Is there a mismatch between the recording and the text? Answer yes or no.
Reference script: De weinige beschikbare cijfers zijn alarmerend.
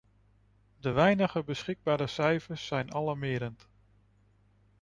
no